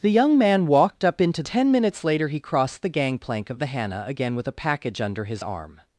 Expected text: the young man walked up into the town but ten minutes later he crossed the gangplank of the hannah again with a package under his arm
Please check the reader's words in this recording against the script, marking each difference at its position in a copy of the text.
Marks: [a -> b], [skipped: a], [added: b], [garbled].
the young man walked up into [skipped: the town but] ten minutes later he crossed the gangplank of the hannah again with a package under his arm